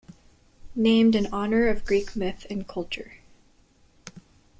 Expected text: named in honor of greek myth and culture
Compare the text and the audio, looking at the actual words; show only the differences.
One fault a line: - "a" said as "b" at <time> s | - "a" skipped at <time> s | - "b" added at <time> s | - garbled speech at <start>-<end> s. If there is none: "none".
none